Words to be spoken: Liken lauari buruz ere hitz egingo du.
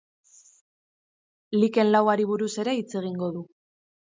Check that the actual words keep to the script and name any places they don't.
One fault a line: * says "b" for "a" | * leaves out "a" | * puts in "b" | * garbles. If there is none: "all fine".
all fine